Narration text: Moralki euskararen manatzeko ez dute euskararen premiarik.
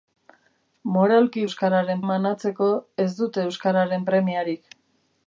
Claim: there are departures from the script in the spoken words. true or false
false